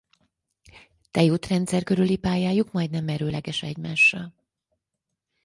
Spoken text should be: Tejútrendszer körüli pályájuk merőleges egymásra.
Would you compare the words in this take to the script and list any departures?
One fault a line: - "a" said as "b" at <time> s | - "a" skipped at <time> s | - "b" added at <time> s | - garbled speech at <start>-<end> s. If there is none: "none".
- "majdnem" added at 2.7 s